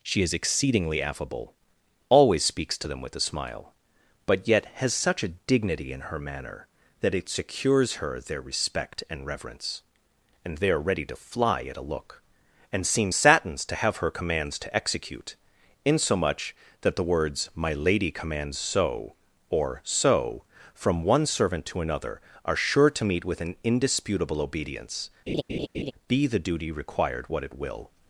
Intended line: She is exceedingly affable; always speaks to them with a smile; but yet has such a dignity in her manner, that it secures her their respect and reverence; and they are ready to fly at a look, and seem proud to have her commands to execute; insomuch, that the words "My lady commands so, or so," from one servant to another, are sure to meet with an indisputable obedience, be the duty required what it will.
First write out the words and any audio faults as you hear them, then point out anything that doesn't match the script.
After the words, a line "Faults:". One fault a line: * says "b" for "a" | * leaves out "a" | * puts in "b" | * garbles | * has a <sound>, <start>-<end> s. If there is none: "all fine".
She is exceedingly affable; always speaks to them with a smile; but yet has such a dignity in her manner, that it secures her their respect and reverence; and they are ready to fly at a look, and seem satins to have her commands to execute; insomuch, that the words "My lady commands so, or so," from one servant to another, are sure to meet with an indisputable obedience, be the duty required what it will.
Faults:
* says "satins" for "proud"
* has a laugh, 25.3-25.9 s